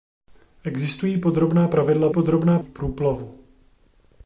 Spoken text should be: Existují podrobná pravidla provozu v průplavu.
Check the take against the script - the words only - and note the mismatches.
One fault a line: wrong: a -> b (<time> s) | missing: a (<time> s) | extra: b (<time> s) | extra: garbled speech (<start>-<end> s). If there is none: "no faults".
wrong: provozu -> podrobná (2.1 s)